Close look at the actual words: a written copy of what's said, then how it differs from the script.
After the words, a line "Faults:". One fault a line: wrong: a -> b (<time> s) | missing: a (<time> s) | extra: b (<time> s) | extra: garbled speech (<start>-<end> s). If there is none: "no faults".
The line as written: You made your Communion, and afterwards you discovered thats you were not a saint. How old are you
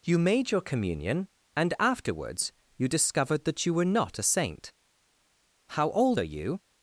You made your Communion, and afterwards you discovered that you were not a saint. How old are you
Faults:
wrong: thats -> that (3.5 s)